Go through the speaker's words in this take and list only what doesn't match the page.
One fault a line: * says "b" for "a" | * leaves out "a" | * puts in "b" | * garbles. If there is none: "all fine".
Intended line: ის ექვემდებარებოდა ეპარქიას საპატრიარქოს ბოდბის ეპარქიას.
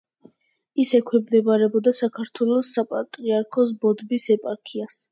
* says "საქართველოს" for "ეპარქიას"